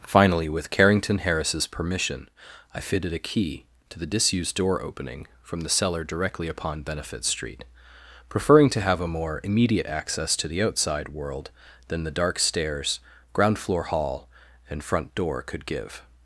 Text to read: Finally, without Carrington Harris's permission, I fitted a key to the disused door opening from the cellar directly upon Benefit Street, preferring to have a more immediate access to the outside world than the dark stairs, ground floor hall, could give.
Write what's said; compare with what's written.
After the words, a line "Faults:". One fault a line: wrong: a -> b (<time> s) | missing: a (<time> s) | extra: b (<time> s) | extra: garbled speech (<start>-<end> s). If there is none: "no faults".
Finally, with Carrington Harris's permission, I fitted a key to the disused door opening from the cellar directly upon Benefit Street, preferring to have a more immediate access to the outside world than the dark stairs, ground floor hall, and front door could give.
Faults:
wrong: without -> with (0.5 s)
extra: and front door (14.7 s)